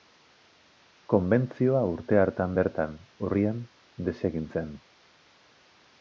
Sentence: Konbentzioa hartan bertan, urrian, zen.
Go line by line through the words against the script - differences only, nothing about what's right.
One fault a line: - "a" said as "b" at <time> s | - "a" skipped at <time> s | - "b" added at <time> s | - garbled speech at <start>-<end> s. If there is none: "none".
- "urte" added at 1.9 s
- "desegin" added at 4.1 s